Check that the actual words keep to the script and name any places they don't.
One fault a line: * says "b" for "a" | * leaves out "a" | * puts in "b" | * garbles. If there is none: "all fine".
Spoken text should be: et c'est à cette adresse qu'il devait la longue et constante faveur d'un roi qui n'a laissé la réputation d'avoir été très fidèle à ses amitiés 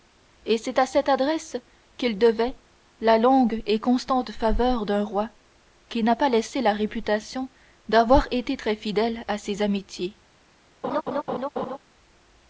* puts in "pas"